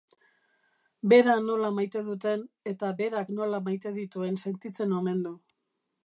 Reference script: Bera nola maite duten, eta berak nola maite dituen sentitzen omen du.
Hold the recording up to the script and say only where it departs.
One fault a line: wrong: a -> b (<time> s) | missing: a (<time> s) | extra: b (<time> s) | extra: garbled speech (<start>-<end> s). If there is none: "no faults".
no faults